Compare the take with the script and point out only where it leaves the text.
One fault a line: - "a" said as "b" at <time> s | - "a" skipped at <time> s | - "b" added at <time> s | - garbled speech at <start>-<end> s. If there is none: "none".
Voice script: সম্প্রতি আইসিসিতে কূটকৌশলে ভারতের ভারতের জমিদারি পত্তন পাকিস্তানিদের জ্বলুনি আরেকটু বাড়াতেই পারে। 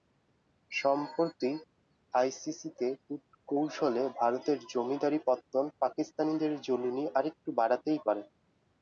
- "ভারতের" skipped at 4.6 s